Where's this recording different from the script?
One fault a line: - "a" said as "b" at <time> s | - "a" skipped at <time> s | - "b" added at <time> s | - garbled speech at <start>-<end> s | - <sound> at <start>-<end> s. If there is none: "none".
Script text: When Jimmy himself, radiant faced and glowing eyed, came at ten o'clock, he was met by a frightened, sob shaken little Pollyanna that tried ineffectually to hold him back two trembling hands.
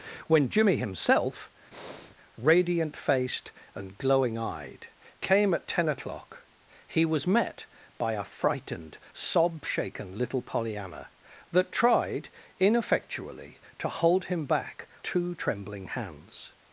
- breath at 1.7-2.2 s